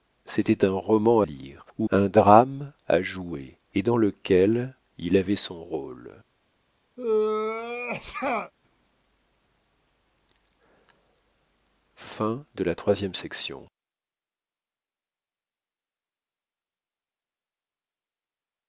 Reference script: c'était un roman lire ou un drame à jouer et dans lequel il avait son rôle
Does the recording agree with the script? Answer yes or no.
yes